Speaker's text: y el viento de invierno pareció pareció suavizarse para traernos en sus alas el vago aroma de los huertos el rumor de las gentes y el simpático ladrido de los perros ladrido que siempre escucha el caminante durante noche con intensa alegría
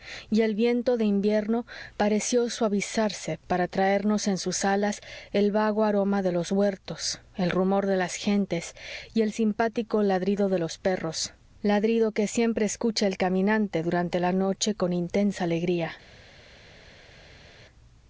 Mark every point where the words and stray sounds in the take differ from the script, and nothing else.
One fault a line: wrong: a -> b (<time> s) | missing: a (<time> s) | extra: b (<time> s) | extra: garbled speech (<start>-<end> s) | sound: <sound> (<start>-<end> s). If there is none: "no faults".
missing: pareció (2.5 s)
extra: la (14.2 s)